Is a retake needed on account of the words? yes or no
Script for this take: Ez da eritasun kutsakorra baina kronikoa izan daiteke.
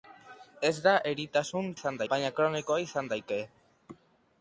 yes